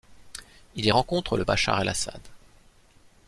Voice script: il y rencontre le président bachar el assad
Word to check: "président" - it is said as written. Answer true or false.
false